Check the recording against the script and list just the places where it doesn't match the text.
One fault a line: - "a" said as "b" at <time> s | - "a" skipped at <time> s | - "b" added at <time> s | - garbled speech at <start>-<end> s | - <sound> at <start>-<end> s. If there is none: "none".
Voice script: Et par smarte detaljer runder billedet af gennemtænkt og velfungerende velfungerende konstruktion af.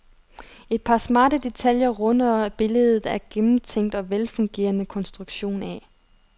- "velfungerende" skipped at 4.8 s